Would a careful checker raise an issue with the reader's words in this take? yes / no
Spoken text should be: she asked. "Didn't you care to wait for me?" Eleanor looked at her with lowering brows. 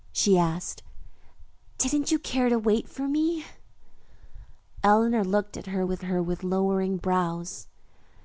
yes